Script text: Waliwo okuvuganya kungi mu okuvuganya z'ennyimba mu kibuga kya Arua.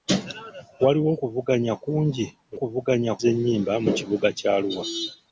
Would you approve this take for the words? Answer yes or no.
yes